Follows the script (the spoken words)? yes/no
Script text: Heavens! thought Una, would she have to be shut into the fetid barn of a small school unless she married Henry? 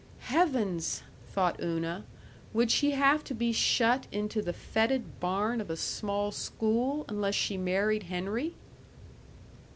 yes